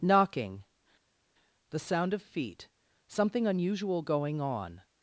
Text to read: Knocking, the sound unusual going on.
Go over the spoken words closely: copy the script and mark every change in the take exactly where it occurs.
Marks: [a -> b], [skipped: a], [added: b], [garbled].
Knocking, the sound [added: of feet something] unusual going on.